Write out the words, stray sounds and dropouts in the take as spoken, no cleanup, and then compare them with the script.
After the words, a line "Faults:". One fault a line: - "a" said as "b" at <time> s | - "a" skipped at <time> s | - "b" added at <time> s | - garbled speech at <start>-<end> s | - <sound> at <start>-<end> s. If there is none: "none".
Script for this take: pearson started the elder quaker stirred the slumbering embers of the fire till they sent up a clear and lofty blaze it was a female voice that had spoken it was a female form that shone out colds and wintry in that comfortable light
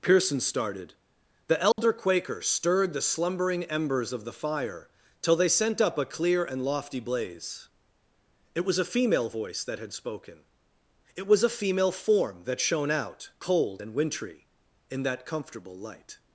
pearson started the elder quaker stirred the slumbering embers of the fire till they sent up a clear and lofty blaze it was a female voice that had spoken it was a female form that shone out cold and wintry in that comfortable light
Faults:
- dropout at 1.7-1.8 s
- "colds" said as "cold" at 13.4 s